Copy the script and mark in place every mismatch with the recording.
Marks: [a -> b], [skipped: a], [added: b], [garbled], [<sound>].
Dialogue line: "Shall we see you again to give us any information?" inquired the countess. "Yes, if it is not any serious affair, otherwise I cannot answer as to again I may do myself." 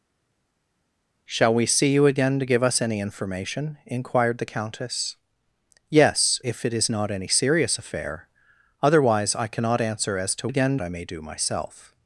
"Shall we see you again to give us any information?" inquired the countess. "Yes, if it is not any serious affair, otherwise I cannot answer as to again I may do myself."